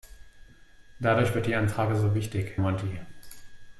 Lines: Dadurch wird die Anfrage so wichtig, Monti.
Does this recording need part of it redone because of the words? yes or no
no